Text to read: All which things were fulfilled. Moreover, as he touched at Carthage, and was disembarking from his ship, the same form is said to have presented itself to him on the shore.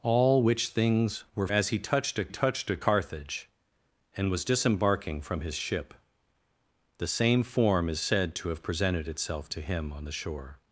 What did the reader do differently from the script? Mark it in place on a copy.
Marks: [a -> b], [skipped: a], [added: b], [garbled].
All which things were [fulfilled. Moreover, as he -> as he touched at] touched at Carthage, and was disembarking from his ship, the same form is said to have presented itself to him on the shore.